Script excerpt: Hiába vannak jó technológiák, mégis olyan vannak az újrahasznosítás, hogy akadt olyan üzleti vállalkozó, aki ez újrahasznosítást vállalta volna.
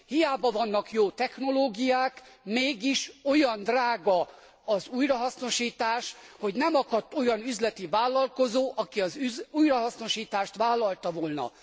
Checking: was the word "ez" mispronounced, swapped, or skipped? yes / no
yes